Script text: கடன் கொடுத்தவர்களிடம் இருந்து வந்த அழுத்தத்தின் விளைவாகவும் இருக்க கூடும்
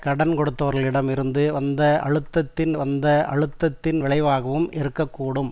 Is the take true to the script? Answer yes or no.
no